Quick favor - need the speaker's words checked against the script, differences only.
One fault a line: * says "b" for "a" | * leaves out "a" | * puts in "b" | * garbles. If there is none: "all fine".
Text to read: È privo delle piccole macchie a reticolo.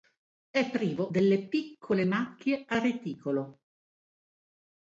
all fine